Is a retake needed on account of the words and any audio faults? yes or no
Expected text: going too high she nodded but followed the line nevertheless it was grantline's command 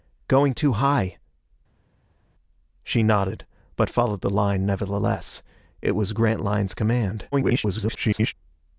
yes